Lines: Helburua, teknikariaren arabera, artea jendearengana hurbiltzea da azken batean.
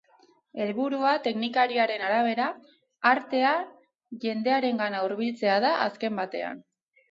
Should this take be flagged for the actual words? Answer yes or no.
no